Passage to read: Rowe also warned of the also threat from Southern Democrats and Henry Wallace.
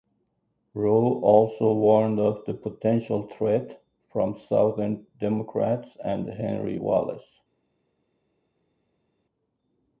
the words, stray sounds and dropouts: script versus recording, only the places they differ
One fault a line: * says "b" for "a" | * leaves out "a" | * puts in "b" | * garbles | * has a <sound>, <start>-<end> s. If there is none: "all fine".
* says "potential" for "also"